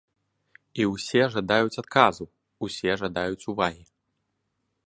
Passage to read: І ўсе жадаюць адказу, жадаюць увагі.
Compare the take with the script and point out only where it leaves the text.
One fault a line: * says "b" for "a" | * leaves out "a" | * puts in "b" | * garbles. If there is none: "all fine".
* puts in "усе"